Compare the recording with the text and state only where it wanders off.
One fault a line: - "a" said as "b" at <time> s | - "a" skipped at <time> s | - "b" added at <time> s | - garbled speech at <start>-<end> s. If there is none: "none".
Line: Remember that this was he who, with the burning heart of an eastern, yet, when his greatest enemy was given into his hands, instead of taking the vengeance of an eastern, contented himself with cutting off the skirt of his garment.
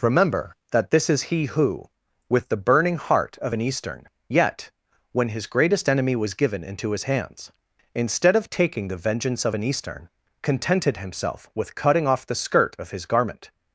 - "was" said as "is" at 1.1 s